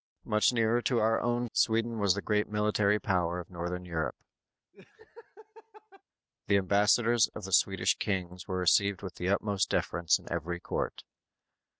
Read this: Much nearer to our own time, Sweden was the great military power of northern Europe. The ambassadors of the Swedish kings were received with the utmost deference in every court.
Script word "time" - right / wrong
wrong